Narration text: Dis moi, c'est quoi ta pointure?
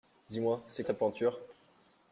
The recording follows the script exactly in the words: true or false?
false